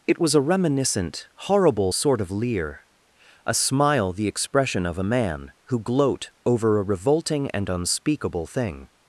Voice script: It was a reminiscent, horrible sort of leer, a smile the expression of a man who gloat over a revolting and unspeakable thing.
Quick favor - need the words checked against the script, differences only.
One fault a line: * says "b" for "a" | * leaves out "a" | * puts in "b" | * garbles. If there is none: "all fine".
all fine